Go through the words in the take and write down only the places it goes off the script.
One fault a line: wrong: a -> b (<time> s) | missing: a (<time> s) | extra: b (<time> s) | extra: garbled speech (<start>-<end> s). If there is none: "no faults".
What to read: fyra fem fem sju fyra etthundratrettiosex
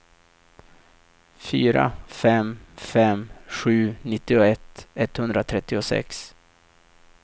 wrong: fyra -> nittioett (4.0 s)